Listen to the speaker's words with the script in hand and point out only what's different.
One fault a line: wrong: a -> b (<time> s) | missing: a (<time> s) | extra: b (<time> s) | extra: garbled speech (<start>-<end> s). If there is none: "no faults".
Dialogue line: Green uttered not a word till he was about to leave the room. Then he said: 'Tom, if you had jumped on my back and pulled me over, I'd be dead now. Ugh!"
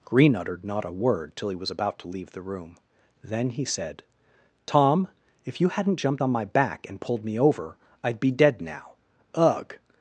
wrong: had -> hadn't (5.7 s)